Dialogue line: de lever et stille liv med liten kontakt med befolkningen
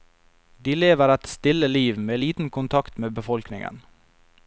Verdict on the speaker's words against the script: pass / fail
pass